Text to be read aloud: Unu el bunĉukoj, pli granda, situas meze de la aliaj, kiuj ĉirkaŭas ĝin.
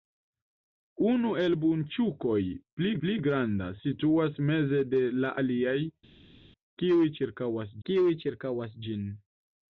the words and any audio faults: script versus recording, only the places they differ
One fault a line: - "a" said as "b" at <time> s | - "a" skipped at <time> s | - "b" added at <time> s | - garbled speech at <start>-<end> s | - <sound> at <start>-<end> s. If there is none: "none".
- "pli" added at 3.0 s
- "kiuj ĉirkaŭas" added at 7.9 s